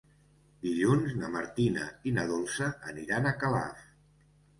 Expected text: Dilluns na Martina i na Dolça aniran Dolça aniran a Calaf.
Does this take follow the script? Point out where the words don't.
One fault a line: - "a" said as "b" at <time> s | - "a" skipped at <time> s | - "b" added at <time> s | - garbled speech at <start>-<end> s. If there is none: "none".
- "Dolça aniran" skipped at 3.3 s